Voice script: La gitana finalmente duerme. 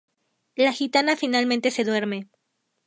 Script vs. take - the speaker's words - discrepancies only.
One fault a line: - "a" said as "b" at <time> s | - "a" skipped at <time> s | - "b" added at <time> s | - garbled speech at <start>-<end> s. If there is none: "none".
- "se" added at 1.7 s